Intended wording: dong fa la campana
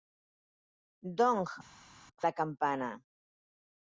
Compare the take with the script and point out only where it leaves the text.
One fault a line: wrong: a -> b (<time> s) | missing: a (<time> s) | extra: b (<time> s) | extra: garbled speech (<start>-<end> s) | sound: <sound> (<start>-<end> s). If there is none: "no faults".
missing: fa (1.4 s)